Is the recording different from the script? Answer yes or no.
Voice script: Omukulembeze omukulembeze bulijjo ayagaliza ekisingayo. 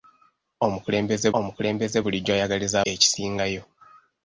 no